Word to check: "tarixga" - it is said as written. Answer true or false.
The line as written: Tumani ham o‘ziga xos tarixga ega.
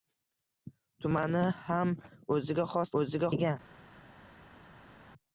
false